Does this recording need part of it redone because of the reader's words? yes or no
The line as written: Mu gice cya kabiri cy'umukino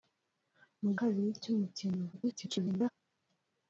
yes